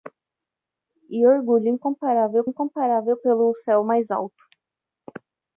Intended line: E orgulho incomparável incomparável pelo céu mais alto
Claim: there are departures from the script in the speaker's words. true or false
false